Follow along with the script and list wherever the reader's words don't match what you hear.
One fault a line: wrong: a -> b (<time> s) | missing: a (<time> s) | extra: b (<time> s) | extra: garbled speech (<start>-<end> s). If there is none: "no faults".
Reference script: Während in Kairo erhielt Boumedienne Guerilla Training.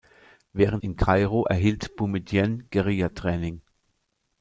no faults